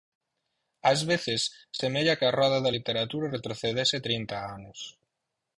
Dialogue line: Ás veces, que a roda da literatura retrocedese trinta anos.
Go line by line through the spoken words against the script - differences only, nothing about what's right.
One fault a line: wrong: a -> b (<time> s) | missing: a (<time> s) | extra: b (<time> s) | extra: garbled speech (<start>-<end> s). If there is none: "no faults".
extra: semella (1.8 s)